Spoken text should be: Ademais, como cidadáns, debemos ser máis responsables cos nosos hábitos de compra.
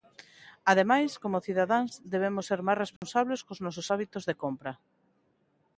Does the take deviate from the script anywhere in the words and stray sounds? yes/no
yes